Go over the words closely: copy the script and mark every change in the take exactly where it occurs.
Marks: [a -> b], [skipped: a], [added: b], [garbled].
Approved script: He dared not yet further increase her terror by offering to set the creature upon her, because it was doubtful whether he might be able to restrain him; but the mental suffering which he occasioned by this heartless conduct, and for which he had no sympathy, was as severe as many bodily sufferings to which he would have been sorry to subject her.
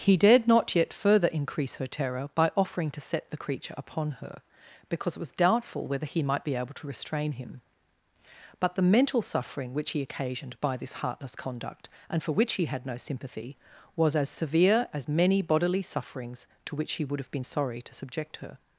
He dared not yet further increase her terror by offering to set the creature upon her, because it was doubtful whether he might be able to restrain him; but the mental suffering which he occasioned by this heartless conduct, and for which he had no sympathy, was as severe as many bodily sufferings to which he would have been sorry to subject her.